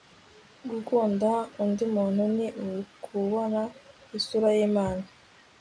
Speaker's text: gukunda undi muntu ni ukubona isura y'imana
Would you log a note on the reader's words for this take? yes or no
no